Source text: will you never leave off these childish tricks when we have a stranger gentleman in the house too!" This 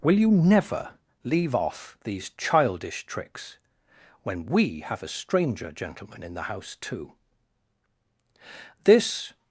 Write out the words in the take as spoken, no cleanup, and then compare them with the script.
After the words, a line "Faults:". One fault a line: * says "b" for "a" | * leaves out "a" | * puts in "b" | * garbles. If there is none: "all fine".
will you never leave off these childish tricks when we have a stranger gentleman in the house too!" This
Faults:
all fine